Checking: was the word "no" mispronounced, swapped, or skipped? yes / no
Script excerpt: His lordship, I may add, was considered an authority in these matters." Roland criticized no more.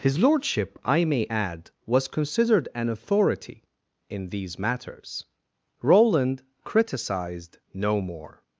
no